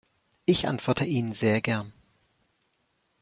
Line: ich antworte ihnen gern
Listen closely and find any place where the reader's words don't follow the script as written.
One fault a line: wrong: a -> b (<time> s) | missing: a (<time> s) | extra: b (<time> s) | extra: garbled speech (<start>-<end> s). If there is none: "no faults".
extra: sehr (1.3 s)